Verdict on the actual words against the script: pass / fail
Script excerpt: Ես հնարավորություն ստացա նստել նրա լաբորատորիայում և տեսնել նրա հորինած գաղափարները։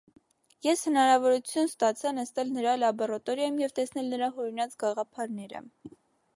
pass